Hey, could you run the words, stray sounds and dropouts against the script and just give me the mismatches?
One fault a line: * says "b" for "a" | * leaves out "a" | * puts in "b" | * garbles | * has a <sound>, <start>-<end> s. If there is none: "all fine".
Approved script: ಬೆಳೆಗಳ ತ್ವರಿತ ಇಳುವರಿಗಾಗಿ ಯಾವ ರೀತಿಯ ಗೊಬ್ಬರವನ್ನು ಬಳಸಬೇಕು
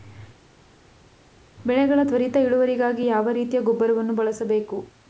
all fine